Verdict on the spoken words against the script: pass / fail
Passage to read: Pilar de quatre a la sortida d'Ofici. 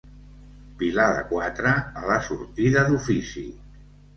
pass